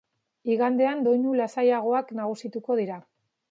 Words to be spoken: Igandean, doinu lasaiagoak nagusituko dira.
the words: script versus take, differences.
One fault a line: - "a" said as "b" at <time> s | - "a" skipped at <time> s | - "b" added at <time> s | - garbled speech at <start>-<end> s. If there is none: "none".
none